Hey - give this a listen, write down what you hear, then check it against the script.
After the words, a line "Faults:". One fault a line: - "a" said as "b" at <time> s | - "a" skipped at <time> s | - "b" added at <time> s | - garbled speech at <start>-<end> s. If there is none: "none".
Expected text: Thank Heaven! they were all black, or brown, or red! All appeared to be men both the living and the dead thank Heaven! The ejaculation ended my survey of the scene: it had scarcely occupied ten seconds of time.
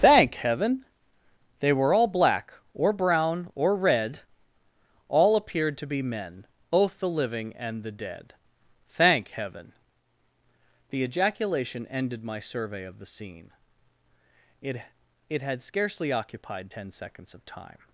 Thank Heaven! they were all black, or brown, or red! All appeared to be men both the living and the dead thank Heaven! The ejaculation ended my survey of the scene: it it had scarcely occupied ten seconds of time.
Faults:
- "it" added at 15.3 s